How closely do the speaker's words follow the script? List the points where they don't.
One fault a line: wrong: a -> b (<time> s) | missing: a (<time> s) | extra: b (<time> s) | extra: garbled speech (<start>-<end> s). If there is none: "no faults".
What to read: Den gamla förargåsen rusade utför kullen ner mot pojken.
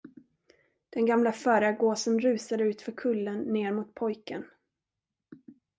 no faults